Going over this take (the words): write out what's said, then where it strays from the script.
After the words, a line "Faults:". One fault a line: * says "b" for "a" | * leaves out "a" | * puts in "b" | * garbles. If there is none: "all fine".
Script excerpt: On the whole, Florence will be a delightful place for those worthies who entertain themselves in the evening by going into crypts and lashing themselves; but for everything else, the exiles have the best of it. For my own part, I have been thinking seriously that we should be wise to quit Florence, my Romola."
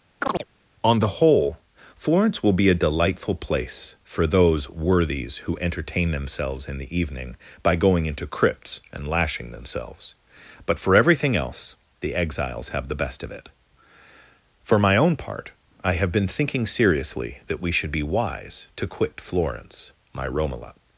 On the whole, Florence will be a delightful place for those worthies who entertain themselves in the evening by going into crypts and lashing themselves; but for everything else, the exiles have the best of it. For my own part, I have been thinking seriously that we should be wise to quit Florence, my Romola."
Faults:
all fine